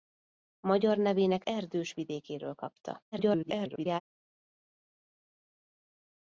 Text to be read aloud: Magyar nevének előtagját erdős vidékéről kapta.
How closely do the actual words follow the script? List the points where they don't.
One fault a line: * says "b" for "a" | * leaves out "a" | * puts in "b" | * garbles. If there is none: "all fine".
* leaves out "előtagját"
* garbles